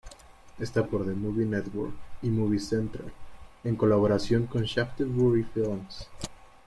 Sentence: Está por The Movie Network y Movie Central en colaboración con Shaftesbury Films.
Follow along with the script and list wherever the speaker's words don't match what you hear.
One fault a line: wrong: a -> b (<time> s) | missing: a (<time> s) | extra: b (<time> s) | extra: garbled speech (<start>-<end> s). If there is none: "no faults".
no faults